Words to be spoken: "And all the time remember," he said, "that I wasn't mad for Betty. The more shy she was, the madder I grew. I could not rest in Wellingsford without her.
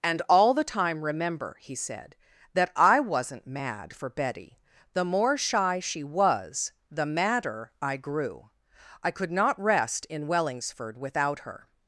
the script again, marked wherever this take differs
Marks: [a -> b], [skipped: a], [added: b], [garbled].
"And all the time remember," he said, "that I wasn't mad for Betty. The more shy she was, the madder I grew. I could not rest in Wellingsford without her.